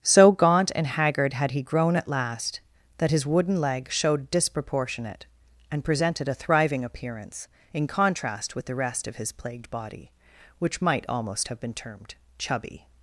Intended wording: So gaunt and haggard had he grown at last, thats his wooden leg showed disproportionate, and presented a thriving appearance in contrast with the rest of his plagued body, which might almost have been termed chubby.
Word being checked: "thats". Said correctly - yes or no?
no